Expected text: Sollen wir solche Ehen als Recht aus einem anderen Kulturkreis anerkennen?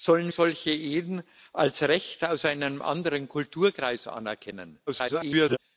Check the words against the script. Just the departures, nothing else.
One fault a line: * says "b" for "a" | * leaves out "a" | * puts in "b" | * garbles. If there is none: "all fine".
* leaves out "wir"
* garbles